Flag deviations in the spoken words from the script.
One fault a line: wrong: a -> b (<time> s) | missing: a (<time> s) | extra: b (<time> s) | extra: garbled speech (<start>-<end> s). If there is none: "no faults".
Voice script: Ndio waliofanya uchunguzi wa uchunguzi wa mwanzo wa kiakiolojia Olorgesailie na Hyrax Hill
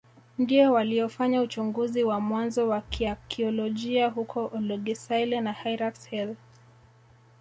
missing: uchunguzi wa (2.2 s)
extra: huko (4.1 s)